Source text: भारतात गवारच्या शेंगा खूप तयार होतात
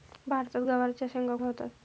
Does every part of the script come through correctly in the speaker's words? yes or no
no